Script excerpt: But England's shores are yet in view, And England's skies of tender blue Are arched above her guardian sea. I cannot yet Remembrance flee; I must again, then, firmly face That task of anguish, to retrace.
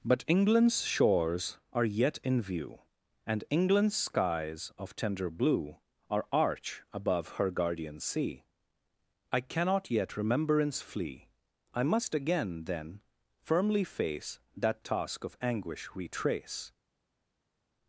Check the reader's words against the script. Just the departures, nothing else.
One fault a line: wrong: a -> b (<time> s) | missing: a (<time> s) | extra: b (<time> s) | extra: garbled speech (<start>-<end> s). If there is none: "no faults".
wrong: arched -> arch (6.3 s)
missing: to (15.9 s)